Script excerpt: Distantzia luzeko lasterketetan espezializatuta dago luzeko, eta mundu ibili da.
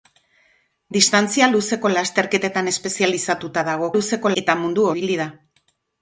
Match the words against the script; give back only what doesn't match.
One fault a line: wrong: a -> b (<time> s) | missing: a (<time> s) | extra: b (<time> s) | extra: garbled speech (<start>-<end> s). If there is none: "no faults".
no faults